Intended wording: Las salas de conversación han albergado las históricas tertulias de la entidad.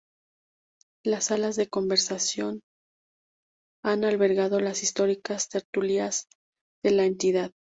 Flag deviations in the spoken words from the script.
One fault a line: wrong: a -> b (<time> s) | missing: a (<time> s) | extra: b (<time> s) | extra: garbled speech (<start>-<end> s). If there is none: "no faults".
no faults